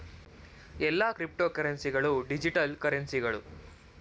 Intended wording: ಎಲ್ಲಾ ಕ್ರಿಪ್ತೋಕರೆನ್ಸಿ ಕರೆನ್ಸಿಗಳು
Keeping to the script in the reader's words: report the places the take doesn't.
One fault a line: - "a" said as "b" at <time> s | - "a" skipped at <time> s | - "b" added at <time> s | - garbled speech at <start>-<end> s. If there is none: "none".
- "ಗಳು ಡಿಜಿಟಲ್" added at 1.9 s